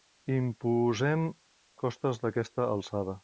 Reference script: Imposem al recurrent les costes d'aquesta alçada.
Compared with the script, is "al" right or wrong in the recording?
wrong